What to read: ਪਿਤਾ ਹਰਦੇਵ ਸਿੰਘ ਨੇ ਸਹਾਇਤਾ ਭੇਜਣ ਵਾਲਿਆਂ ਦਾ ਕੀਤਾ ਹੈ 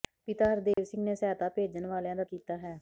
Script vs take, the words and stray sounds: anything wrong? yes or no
yes